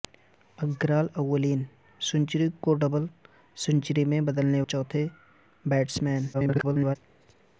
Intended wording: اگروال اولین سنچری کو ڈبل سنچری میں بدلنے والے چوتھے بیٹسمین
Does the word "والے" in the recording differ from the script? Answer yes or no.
yes